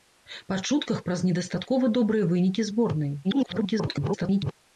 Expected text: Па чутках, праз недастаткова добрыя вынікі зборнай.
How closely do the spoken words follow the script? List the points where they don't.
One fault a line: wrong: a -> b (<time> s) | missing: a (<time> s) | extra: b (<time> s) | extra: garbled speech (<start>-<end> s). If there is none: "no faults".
extra: garbled speech (3.2-4.5 s)